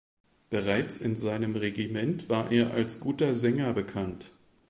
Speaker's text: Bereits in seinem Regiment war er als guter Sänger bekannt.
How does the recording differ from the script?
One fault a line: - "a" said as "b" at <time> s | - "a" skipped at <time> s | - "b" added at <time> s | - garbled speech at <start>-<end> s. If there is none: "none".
none